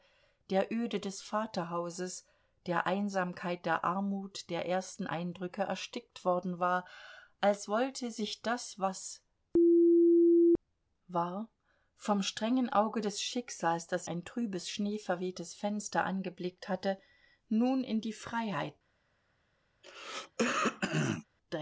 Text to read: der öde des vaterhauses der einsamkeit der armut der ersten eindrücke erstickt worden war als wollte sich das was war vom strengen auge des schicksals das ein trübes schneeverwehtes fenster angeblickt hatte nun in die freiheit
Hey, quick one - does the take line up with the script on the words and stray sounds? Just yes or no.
no